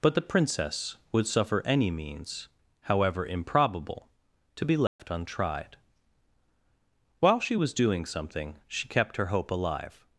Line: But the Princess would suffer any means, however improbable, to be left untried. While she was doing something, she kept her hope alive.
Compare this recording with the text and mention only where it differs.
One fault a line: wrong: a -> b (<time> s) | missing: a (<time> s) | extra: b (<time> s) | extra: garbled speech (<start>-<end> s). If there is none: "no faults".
no faults